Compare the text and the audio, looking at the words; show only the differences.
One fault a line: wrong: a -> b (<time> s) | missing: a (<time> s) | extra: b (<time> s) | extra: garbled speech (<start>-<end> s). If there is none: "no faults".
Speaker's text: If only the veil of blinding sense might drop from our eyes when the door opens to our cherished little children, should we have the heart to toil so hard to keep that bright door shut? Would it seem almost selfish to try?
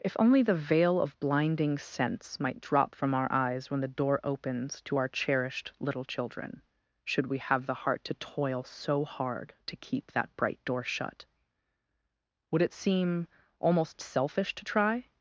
no faults